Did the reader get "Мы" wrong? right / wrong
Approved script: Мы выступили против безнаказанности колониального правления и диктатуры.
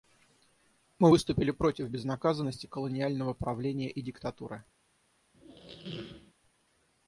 right